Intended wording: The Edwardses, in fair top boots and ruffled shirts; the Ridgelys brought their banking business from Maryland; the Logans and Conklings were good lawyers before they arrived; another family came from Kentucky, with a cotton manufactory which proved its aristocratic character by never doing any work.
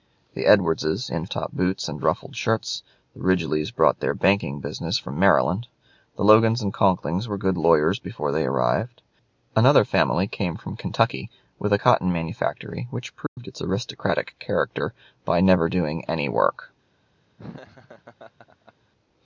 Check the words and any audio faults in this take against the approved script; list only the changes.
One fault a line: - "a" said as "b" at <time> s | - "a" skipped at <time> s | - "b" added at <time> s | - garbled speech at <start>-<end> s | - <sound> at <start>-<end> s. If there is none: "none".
- "fair" skipped at 1.3 s
- dropout at 13.3-13.4 s
- laugh at 17.4-18.7 s